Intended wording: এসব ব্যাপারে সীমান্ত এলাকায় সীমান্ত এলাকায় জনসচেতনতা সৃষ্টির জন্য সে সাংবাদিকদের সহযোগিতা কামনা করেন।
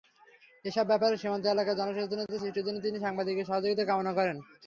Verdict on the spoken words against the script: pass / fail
fail